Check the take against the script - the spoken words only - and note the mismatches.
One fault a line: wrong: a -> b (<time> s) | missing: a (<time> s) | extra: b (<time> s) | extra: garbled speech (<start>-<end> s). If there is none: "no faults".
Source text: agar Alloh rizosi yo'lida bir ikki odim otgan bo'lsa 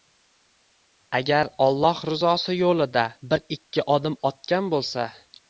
no faults